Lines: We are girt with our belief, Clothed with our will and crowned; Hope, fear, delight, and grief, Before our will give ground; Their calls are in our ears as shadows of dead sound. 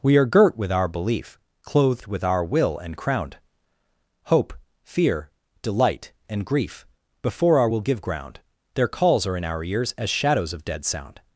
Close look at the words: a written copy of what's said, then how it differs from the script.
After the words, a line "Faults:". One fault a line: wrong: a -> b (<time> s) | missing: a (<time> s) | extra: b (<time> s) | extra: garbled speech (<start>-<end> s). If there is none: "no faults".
We are girt with our belief, Clothed with our will and crowned; Hope, fear, delight, and grief, Before our will give ground; Their calls are in our ears as shadows of dead sound.
Faults:
no faults